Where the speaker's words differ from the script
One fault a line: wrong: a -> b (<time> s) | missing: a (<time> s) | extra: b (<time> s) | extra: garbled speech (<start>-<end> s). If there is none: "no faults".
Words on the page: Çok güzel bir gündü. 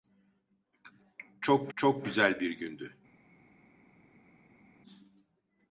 extra: çok (1.8 s)